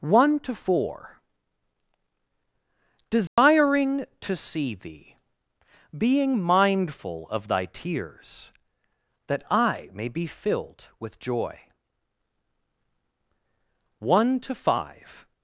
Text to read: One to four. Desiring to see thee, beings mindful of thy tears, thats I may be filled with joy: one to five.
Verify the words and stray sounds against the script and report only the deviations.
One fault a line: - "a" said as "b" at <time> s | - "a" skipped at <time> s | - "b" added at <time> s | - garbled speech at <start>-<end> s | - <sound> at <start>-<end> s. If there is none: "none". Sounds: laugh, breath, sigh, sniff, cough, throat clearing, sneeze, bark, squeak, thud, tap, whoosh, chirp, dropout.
- dropout at 3.3-3.4 s
- "beings" said as "being" at 6.0 s
- "thats" said as "that" at 9.3 s